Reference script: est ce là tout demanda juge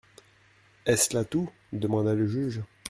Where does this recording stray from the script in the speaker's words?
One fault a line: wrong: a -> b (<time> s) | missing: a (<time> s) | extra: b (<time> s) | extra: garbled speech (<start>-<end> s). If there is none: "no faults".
extra: le (2.1 s)